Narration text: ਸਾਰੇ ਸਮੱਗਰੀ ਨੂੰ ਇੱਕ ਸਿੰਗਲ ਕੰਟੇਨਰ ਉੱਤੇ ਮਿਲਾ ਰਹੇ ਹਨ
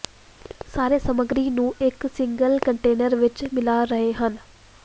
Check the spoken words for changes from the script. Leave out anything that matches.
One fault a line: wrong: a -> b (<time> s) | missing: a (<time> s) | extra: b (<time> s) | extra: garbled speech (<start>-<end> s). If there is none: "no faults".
wrong: ਉੱਤੇ -> ਵਿੱਚ (3.2 s)